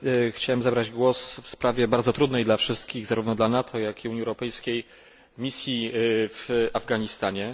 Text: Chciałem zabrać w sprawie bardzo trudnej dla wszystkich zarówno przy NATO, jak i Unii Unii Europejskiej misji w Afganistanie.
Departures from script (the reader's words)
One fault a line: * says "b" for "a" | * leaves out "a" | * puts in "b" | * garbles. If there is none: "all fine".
* puts in "głos"
* says "dla" for "przy"
* leaves out "Unii"